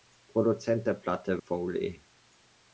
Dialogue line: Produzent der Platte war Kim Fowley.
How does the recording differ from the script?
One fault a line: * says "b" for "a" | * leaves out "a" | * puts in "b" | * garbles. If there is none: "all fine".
* leaves out "war Kim"